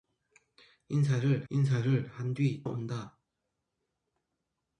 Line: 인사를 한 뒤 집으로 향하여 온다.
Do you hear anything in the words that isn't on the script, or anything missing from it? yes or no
yes